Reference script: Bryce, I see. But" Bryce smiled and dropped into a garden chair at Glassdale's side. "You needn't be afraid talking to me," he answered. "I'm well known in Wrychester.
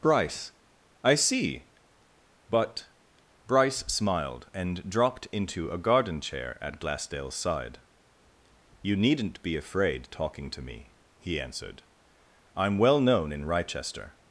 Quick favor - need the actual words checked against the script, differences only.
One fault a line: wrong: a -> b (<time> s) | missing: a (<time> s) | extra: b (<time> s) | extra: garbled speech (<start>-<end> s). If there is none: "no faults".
no faults